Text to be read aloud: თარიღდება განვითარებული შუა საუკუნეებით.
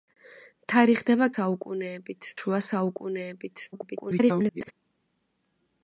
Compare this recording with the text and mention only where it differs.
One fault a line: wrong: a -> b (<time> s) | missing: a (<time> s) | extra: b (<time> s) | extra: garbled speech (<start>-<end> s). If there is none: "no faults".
wrong: განვითარებული -> საუკუნეებით (1.3 s)
extra: garbled speech (3.7-4.7 s)